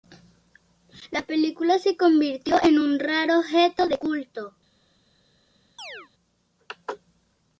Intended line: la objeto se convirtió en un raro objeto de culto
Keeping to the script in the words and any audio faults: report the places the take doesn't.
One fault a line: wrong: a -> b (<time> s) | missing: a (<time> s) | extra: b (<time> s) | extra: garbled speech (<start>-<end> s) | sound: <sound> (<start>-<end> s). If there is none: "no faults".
wrong: objeto -> película (1.2 s)
sound: chirp (5.8-6.1 s)